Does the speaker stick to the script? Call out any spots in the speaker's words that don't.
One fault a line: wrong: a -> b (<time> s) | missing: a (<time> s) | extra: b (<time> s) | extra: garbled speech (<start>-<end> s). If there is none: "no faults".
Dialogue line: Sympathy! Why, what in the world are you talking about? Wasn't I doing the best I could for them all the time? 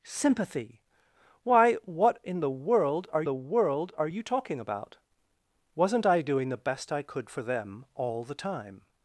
extra: the world are (3.2 s)